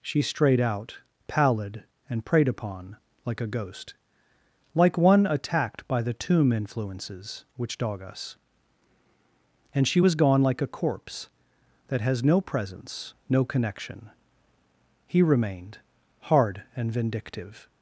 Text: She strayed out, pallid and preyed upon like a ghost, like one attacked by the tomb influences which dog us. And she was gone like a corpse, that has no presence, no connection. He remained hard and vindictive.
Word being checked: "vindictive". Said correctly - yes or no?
yes